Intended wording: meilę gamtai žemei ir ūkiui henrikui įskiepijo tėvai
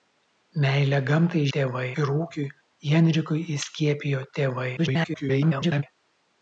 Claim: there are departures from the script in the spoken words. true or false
true